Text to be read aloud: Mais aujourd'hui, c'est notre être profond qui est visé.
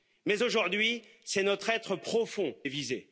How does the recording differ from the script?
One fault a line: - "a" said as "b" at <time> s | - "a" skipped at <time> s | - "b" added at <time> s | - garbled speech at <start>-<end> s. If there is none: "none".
- "qui" skipped at 2.6 s